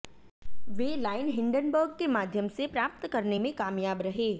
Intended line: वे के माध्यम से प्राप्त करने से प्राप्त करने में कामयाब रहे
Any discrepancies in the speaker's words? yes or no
yes